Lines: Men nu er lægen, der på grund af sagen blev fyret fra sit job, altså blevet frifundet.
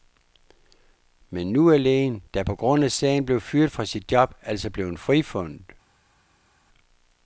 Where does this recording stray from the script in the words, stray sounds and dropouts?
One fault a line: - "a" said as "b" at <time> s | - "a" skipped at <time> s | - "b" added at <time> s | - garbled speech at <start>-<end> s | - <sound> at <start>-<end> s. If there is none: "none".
none